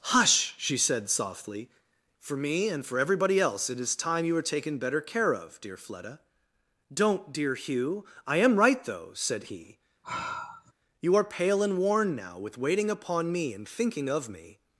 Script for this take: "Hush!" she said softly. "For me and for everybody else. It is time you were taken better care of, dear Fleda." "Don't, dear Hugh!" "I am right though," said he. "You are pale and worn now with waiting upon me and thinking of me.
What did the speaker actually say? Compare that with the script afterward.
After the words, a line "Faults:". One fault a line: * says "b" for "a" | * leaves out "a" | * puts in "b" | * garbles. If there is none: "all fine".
"Hush!" she said softly. "For me and for everybody else. It is time you were taken better care of, dear Fleda." "Don't, dear Hugh!" "I am right though," said he. "You are pale and worn now with waiting upon me and thinking of me.
Faults:
all fine